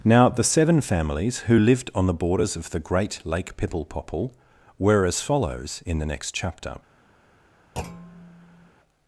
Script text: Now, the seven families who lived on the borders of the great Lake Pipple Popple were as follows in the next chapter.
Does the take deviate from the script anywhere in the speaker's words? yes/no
no